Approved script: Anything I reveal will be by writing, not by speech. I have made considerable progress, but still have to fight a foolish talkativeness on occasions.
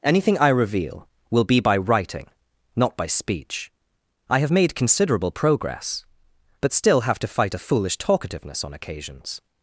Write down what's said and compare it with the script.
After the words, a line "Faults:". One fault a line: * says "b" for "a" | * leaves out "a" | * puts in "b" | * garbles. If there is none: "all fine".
Anything I reveal will be by writing, not by speech. I have made considerable progress, but still have to fight a foolish talkativeness on occasions.
Faults:
all fine